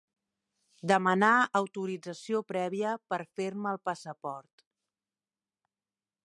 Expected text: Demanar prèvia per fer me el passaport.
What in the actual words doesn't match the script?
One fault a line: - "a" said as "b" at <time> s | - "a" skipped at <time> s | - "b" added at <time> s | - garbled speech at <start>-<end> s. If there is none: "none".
- "autorització" added at 1.6 s